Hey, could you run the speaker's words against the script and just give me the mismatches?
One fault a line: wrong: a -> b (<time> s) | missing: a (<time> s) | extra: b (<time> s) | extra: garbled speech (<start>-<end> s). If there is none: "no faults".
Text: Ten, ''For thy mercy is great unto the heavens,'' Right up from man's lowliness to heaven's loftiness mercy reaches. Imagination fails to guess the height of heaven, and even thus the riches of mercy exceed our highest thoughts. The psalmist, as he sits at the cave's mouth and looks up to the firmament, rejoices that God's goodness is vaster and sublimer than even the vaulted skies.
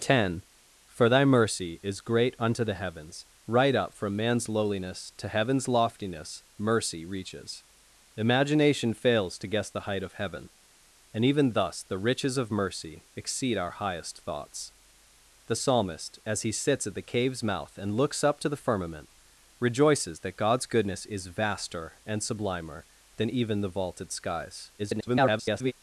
extra: garbled speech (24.8-25.7 s)